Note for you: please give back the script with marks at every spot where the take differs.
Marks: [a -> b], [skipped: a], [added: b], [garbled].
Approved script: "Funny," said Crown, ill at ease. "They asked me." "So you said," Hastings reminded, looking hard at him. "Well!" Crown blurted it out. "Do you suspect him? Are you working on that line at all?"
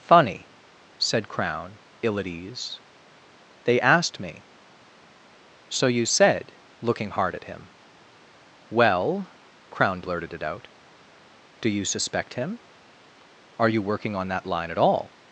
"Funny," said Crown, ill at ease. "They asked me." "So you said," [skipped: Hastings reminded,] looking hard at him. "Well!" Crown blurted it out. "Do you suspect him? Are you working on that line at all?"